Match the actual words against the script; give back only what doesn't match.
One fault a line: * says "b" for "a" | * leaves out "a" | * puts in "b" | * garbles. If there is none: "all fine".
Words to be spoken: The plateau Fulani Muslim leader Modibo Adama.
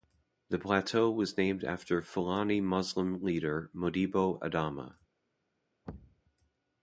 * puts in "was named after"